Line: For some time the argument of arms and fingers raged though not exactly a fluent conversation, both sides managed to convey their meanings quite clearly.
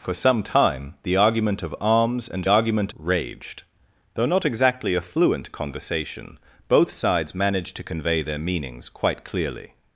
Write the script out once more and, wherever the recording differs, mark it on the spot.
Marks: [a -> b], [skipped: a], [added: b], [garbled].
For some time the argument of arms and [fingers -> argument] raged though not exactly a fluent conversation, both sides managed to convey their meanings quite clearly.